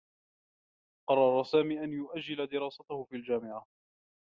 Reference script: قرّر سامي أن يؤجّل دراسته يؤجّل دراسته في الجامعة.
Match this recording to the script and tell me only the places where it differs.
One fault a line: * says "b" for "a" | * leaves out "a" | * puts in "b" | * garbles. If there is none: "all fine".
* leaves out "يؤجّل دراسته"